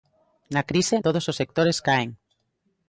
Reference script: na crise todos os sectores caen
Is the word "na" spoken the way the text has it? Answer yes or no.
yes